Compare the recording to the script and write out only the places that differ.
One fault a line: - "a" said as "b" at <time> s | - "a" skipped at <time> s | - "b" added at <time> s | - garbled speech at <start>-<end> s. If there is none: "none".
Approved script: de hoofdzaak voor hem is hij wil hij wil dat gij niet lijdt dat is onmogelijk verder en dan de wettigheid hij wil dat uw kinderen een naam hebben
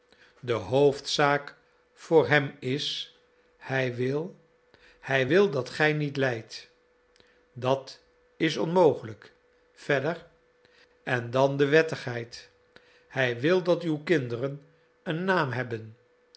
none